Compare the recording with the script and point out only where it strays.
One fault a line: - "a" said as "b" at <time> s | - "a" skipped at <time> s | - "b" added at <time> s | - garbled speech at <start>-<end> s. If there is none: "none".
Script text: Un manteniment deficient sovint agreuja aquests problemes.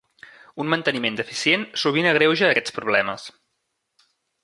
none